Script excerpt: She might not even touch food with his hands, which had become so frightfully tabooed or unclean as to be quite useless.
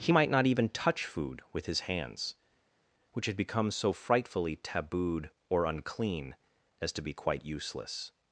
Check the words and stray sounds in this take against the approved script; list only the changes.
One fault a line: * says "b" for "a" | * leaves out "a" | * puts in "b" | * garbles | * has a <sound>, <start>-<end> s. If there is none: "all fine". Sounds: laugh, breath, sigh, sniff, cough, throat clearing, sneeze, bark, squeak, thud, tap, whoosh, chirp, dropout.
* says "He" for "She"